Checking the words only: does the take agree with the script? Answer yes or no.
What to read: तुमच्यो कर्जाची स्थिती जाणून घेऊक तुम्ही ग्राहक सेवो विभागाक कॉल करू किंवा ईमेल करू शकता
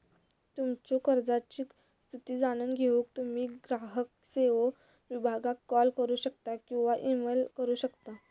no